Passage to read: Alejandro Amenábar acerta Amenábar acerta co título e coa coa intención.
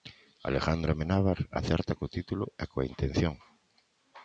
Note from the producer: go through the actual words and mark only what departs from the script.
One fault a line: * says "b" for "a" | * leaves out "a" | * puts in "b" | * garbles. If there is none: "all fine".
* leaves out "Amenábar acerta"
* leaves out "coa"